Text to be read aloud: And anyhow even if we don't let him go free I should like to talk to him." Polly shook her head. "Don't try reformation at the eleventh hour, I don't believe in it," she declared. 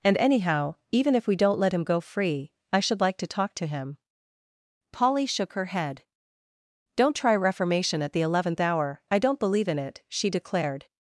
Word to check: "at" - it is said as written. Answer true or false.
true